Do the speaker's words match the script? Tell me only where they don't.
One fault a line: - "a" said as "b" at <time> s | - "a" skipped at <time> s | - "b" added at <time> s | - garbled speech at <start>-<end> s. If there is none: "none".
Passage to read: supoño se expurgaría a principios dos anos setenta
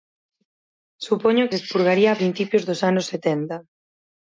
none